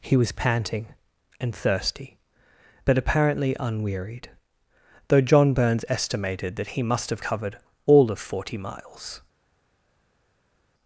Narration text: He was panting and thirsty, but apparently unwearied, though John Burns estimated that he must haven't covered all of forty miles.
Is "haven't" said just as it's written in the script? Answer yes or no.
no